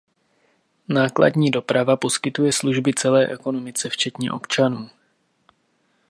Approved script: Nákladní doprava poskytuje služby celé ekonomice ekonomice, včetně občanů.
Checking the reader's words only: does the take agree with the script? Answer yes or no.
no